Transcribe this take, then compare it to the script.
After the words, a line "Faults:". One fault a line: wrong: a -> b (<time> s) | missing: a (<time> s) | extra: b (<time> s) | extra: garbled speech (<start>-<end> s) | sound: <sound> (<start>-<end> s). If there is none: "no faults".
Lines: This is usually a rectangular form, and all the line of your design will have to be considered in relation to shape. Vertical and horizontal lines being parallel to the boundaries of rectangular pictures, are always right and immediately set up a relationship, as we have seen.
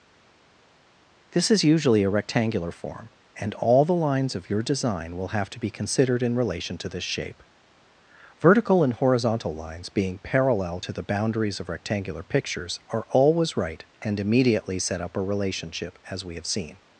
This is usually a rectangular form, and all the lines of your design will have to be considered in relation to this shape. Vertical and horizontal lines being parallel to the boundaries of rectangular pictures, are always right and immediately set up a relationship, as we have seen.
Faults:
wrong: line -> lines (3.9 s)
extra: this (6.9 s)